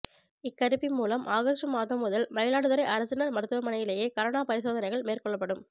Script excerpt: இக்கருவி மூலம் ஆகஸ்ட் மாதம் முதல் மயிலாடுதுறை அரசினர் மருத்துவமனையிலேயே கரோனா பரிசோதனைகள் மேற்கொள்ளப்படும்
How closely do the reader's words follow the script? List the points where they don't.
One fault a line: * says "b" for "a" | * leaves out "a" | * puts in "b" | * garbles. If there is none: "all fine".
all fine